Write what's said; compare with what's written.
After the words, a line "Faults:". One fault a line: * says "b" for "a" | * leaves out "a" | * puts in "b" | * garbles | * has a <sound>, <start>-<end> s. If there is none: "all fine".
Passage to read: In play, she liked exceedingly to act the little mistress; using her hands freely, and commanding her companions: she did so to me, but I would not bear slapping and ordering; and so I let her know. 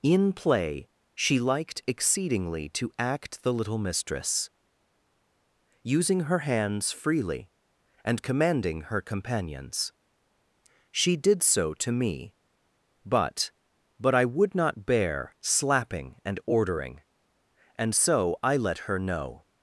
In play, she liked exceedingly to act the little mistress; using her hands freely, and commanding her companions: she did so to me, but but I would not bear slapping and ordering; and so I let her know.
Faults:
* puts in "but"